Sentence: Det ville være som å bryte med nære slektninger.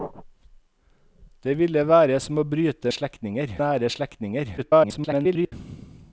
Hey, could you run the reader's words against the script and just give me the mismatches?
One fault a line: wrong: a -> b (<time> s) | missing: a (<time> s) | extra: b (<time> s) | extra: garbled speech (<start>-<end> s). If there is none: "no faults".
wrong: med -> slektninger (2.9 s)
extra: garbled speech (4.6-5.5 s)